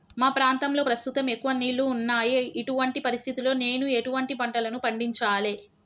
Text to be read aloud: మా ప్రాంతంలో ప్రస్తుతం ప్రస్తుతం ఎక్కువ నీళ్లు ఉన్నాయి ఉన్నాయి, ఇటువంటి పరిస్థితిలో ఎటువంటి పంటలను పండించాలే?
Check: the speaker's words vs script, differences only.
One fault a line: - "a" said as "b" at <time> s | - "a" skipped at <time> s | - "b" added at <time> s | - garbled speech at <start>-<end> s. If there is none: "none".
- "ప్రస్తుతం" skipped at 1.3 s
- "ఉన్నాయి" skipped at 2.3 s
- "నేను" added at 3.6 s